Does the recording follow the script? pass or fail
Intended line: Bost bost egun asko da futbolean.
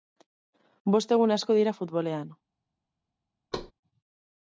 fail